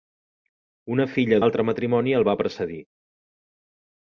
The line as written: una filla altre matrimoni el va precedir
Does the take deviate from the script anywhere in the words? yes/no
no